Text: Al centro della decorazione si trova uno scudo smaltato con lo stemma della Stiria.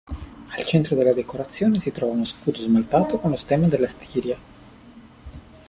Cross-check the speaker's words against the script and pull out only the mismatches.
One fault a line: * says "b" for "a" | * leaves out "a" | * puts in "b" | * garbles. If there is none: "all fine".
all fine